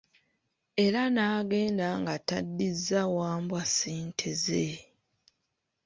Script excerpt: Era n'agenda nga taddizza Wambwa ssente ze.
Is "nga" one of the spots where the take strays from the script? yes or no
no